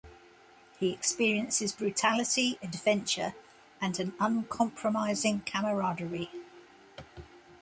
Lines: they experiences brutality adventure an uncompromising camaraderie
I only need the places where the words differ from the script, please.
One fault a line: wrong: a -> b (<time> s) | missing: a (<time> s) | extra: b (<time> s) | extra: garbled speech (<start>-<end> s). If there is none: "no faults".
wrong: they -> he (0.8 s)
extra: and (3.8 s)